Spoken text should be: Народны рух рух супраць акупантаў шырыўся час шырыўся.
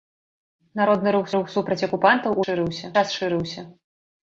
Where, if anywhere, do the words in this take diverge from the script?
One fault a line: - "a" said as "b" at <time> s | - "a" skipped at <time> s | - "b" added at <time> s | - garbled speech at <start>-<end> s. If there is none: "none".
none